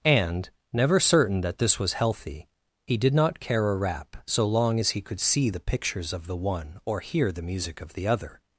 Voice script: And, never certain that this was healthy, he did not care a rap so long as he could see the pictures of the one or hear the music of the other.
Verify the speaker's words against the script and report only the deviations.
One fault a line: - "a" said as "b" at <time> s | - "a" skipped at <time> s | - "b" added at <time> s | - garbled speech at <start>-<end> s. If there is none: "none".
none